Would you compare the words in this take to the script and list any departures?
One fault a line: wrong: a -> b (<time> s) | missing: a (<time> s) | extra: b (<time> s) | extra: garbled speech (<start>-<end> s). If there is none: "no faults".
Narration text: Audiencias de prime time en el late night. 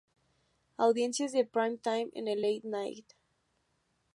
no faults